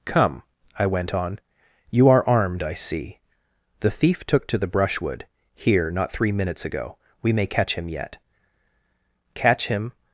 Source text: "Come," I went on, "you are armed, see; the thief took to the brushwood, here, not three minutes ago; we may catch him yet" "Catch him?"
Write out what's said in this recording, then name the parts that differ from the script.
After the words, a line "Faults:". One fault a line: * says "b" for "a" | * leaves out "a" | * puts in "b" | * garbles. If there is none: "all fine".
"Come," I went on, "you are armed, I see; the thief took to the brushwood, here, not three minutes ago; we may catch him yet" "Catch him?"
Faults:
* puts in "I"